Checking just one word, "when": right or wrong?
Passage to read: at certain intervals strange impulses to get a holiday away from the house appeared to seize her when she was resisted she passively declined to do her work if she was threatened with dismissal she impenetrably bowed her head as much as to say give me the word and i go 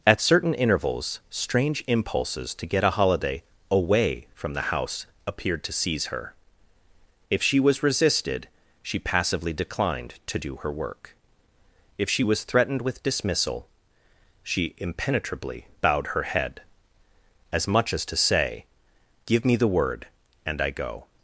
wrong